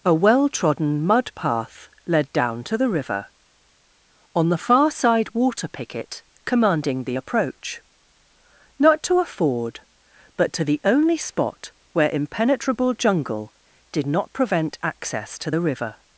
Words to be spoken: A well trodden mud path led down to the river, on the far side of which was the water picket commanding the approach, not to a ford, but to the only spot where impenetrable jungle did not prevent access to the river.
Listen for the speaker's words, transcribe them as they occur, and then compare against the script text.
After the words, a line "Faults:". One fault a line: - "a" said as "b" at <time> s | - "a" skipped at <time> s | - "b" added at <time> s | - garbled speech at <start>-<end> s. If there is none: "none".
A well trodden mud path led down to the river, on the far side water picket commanding the approach, not to a ford, but to the only spot where impenetrable jungle did not prevent access to the river.
Faults:
- "of which was the" skipped at 5.3 s